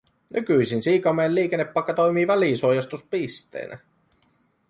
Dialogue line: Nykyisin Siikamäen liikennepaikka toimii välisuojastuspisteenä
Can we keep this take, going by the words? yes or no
yes